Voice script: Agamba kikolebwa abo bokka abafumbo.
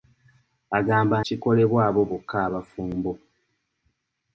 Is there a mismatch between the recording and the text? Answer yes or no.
no